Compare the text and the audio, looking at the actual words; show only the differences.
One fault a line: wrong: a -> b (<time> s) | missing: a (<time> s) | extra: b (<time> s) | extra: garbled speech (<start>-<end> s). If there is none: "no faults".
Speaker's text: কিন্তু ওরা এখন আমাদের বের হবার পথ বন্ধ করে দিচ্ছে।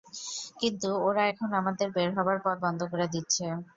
no faults